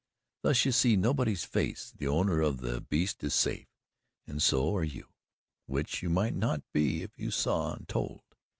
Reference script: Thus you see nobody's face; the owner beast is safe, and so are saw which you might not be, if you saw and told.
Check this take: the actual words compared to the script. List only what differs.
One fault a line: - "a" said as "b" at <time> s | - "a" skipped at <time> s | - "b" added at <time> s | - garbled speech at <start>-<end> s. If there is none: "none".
- "of the" added at 2.4 s
- "saw" said as "you" at 4.8 s